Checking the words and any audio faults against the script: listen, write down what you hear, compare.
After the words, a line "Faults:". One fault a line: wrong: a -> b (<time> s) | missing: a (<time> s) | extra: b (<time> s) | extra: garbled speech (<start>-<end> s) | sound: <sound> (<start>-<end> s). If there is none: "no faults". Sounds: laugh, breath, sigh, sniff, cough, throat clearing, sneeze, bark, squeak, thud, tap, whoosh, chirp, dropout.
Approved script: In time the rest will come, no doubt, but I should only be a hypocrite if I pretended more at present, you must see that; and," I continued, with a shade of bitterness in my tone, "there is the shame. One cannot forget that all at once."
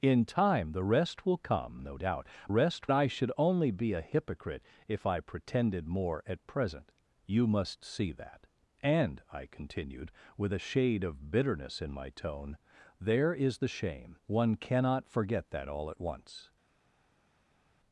In time the rest will come, no doubt, rest I should only be a hypocrite if I pretended more at present, you must see that; and," I continued, with a shade of bitterness in my tone, "there is the shame. One cannot forget that all at once."
Faults:
wrong: but -> rest (2.5 s)